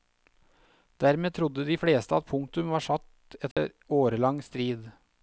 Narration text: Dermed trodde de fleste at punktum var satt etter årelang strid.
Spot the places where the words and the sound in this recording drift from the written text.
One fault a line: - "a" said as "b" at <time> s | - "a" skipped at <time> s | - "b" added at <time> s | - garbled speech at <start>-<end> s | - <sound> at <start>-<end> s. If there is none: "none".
- dropout at 3.5-3.6 s